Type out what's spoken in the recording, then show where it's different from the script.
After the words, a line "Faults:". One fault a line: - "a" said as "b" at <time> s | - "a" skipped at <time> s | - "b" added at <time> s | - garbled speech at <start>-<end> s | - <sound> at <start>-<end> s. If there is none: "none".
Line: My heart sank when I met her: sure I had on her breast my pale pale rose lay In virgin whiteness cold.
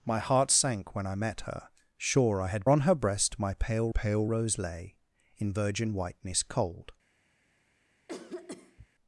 My heart sank when I met her: sure I had on her breast my pale pale rose lay In virgin whiteness cold.
Faults:
- cough at 8.1-8.9 s